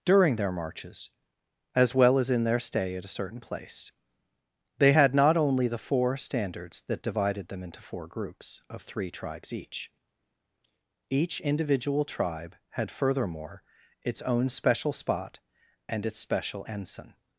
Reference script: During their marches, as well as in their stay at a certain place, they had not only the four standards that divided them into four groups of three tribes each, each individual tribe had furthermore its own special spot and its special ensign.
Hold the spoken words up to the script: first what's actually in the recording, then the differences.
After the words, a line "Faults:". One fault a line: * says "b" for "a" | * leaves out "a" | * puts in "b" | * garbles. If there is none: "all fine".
During their marches, as well as in their stay at a certain place, they had not only the four standards that divided them into four groups of three tribes each, each individual tribe had furthermore its own special spot and its special ensign.
Faults:
all fine